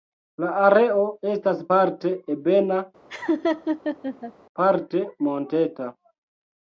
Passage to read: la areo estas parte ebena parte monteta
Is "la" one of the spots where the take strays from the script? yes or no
no